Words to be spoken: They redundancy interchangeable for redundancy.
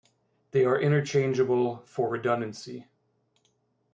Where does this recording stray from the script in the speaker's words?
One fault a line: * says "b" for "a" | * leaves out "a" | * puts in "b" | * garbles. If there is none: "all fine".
* says "are" for "redundancy"